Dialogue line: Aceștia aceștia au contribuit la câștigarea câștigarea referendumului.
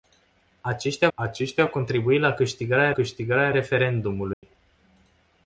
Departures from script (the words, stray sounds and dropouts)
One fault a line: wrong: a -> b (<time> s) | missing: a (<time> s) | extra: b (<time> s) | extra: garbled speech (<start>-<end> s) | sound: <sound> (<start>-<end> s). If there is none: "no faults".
sound: dropout (4.3-4.4 s)